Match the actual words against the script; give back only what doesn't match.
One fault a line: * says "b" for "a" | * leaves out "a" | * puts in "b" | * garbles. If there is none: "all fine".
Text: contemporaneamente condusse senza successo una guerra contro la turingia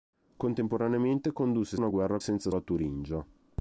* leaves out "senza successo"
* says "senza" for "contro"